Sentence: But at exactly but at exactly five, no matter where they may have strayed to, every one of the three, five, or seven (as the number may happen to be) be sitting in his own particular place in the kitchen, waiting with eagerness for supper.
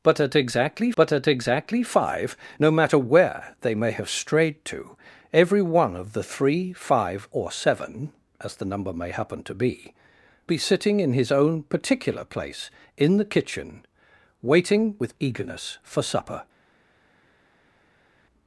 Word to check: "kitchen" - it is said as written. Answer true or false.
true